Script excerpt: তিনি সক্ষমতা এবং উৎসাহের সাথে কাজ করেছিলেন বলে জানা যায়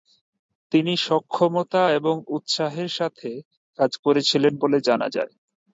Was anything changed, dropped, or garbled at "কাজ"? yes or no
no